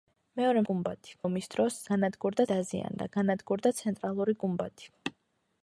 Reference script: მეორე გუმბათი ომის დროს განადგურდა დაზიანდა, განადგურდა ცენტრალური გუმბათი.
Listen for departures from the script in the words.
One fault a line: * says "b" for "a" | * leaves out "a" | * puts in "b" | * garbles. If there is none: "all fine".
all fine